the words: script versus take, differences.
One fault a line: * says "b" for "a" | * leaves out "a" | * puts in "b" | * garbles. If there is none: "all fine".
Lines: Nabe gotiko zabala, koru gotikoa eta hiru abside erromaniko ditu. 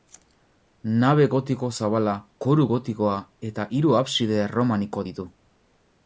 all fine